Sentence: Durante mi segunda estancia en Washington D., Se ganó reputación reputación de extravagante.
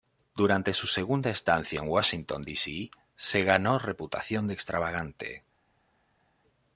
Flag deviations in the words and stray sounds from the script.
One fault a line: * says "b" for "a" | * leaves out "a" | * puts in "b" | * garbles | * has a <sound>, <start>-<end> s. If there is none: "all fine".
* says "su" for "mi"
* puts in "C"
* leaves out "reputación"